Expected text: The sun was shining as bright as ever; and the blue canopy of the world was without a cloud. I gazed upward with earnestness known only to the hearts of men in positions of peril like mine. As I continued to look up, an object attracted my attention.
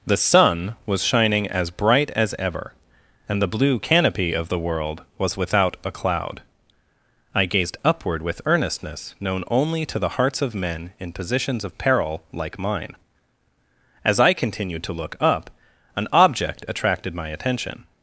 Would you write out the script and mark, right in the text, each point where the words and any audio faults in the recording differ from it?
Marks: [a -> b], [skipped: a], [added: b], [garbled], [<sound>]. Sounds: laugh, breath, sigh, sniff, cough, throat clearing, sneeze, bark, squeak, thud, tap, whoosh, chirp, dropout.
The sun was shining as bright as ever; and the blue canopy of the world was without a cloud. I gazed upward with earnestness known only to the hearts of men in positions of peril like mine. As I continued to look up, an object attracted my attention.